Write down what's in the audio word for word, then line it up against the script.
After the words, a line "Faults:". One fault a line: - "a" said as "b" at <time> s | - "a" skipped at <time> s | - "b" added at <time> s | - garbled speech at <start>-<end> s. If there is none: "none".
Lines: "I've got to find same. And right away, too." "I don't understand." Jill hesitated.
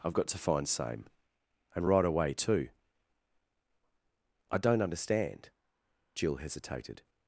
"I've got to find same. And right away, too." "I don't understand." Jill hesitated.
Faults:
none